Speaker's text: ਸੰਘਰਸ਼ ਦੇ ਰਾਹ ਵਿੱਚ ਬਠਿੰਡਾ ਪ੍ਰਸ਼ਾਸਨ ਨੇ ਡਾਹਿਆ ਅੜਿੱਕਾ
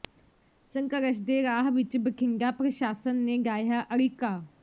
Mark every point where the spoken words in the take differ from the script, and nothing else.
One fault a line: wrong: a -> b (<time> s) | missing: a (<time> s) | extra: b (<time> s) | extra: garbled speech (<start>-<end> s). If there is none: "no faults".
no faults